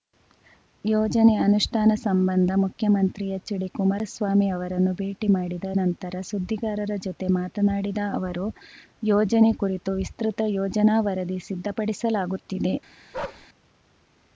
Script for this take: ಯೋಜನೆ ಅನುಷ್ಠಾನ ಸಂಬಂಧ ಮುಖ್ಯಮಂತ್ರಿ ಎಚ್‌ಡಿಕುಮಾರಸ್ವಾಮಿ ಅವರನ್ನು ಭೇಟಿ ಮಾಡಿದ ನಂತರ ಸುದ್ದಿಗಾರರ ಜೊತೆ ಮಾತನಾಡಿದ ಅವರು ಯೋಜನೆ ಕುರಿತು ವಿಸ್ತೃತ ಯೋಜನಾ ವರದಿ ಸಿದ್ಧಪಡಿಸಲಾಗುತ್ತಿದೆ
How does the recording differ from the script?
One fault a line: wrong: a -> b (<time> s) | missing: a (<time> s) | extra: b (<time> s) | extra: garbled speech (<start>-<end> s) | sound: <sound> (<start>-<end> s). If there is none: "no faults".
sound: bark (13.1-13.5 s)